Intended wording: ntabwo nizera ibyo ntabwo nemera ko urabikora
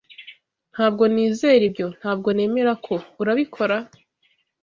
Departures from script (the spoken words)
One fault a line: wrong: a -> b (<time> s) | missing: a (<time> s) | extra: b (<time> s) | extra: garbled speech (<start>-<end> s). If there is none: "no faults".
no faults